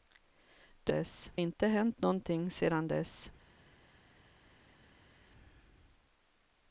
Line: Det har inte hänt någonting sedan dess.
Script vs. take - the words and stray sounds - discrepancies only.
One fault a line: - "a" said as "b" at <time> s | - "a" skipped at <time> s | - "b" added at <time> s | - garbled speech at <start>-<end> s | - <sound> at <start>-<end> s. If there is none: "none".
- "har" said as "dess" at 0.9 s